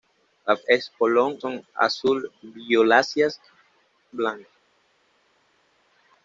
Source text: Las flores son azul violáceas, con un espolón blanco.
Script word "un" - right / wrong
wrong